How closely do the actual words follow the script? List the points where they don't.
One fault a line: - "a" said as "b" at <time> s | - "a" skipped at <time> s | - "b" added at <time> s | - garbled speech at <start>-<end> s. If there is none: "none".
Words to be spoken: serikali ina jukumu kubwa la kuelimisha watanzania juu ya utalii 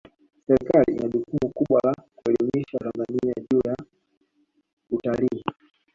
none